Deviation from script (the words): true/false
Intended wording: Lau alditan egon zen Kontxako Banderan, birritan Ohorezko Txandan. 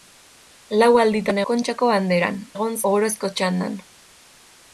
true